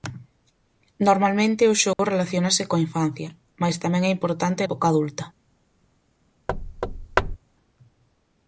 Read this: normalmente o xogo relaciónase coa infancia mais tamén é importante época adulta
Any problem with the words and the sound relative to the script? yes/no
yes